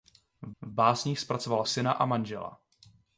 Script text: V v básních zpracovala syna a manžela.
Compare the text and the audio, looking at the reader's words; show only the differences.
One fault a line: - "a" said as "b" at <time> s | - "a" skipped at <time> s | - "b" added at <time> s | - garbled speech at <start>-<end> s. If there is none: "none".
none